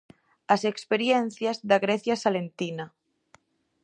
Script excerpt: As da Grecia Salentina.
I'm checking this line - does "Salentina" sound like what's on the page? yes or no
yes